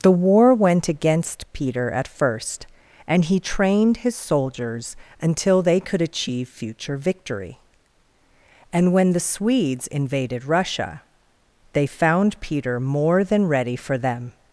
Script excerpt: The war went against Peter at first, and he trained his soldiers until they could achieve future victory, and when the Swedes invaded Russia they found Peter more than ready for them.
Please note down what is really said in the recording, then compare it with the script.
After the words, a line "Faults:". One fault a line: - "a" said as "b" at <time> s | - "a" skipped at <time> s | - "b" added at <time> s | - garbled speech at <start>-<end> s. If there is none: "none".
The war went against Peter at first, and he trained his soldiers until they could achieve future victory, and when the Swedes invaded Russia they found Peter more than ready for them.
Faults:
none